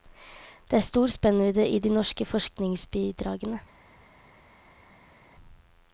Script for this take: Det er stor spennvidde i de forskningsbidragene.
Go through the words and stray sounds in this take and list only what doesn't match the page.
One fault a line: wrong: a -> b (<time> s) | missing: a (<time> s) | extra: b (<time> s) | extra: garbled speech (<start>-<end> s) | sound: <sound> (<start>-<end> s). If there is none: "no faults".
extra: norske (1.9 s)